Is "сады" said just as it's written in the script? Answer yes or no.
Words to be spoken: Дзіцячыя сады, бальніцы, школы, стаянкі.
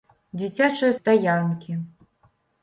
no